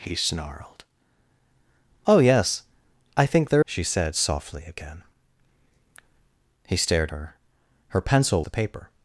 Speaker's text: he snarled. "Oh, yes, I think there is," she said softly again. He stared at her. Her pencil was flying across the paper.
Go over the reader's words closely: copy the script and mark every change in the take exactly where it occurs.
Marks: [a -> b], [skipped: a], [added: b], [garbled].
he snarled. "Oh, yes, I think there [skipped: is,"] she said softly again. He stared [skipped: at] her. Her pencil [skipped: was flying across] the paper.